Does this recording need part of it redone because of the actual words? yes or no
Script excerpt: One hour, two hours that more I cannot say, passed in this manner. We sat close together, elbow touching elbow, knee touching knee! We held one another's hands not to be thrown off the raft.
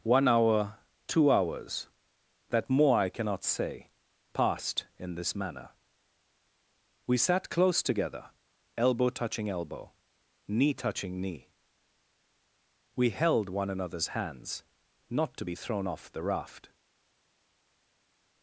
no